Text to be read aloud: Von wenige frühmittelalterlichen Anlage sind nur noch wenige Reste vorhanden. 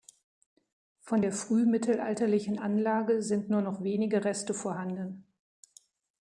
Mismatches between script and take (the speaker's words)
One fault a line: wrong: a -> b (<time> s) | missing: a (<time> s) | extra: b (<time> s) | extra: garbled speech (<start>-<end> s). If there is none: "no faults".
wrong: wenige -> der (1.2 s)